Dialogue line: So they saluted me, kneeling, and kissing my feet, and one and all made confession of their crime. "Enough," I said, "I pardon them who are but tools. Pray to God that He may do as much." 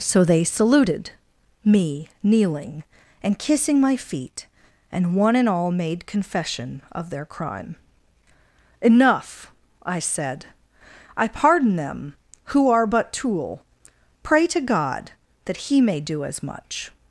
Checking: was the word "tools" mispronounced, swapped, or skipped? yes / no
yes